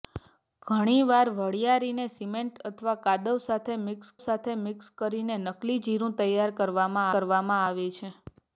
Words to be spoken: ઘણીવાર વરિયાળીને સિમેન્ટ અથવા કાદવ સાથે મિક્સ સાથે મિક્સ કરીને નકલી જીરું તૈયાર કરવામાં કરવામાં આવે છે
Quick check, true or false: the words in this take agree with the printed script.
true